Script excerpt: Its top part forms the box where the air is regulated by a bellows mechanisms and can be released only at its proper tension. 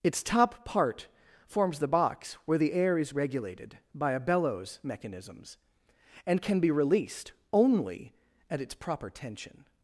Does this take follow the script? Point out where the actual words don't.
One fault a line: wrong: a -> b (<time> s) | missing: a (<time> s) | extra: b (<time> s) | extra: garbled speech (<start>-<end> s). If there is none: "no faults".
no faults